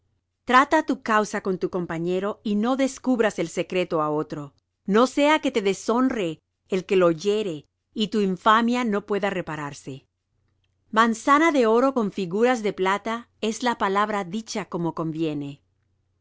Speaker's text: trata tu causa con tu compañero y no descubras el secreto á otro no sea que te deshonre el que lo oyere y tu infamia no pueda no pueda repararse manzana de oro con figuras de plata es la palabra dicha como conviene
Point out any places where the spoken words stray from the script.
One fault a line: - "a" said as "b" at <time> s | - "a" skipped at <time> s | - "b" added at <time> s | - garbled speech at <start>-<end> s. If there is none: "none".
- "no pueda" skipped at 9.3 s